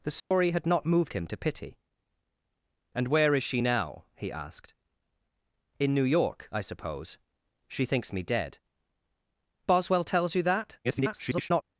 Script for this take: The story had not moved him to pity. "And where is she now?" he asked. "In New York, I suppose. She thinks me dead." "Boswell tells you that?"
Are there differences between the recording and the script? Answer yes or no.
yes